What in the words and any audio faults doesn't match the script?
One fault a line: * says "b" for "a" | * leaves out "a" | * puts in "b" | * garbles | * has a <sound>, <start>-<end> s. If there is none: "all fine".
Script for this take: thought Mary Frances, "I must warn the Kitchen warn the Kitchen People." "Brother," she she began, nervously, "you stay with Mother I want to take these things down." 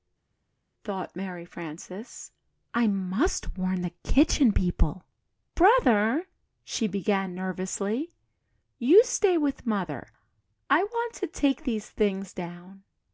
* leaves out "warn the Kitchen"
* leaves out "she"